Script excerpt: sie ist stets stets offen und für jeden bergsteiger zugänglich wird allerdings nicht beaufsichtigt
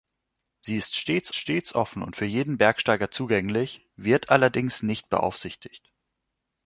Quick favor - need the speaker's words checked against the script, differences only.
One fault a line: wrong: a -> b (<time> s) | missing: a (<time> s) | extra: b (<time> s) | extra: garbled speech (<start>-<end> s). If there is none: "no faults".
no faults